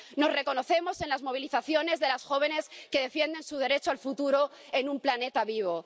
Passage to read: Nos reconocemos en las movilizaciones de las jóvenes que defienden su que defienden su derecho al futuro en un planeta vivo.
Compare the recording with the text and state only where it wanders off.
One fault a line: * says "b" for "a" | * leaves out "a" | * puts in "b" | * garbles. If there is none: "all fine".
* leaves out "que defienden su"